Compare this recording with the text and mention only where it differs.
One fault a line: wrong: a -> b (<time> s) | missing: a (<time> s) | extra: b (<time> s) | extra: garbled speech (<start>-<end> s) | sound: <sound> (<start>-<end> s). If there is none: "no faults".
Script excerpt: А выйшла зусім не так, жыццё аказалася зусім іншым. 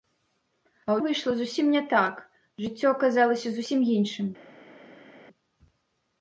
no faults